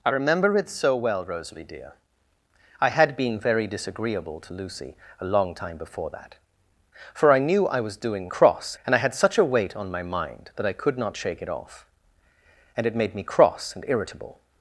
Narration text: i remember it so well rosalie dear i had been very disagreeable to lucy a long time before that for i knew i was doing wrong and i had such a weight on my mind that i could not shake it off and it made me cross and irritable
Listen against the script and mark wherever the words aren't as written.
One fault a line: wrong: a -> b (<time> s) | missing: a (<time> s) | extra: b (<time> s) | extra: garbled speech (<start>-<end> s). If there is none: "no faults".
wrong: wrong -> cross (8.3 s)